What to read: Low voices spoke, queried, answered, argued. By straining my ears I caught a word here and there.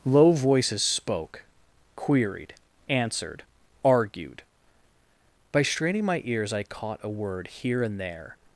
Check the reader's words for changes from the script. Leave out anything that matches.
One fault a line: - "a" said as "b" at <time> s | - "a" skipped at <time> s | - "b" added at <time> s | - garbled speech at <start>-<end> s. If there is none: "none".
none